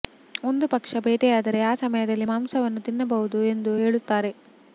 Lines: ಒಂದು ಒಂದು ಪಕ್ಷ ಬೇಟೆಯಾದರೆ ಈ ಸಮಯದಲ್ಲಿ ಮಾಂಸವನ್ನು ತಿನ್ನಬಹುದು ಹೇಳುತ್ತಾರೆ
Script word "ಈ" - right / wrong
wrong